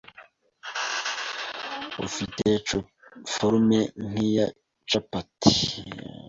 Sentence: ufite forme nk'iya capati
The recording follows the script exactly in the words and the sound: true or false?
true